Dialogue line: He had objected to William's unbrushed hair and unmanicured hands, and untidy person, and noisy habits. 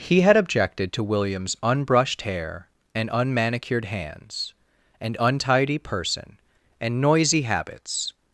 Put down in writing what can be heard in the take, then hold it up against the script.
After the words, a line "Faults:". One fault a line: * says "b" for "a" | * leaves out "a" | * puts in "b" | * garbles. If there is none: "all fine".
He had objected to William's unbrushed hair and unmanicured hands, and untidy person, and noisy habits.
Faults:
all fine